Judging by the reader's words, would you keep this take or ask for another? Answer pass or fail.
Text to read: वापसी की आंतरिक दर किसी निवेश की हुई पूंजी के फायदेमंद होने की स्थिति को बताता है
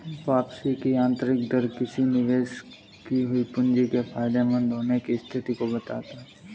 pass